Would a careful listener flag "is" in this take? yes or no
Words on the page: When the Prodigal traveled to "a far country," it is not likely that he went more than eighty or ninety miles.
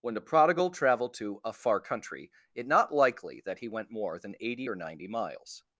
yes